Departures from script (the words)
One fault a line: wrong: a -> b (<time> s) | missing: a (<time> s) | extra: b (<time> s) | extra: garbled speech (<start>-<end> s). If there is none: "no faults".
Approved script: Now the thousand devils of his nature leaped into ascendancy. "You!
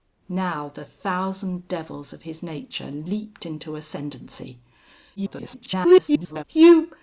extra: garbled speech (5.2-6.4 s)